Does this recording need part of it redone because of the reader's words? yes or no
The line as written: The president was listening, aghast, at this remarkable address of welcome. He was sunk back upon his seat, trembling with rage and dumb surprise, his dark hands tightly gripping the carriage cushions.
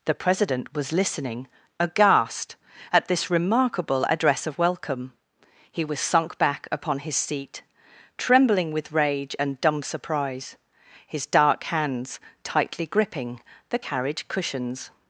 no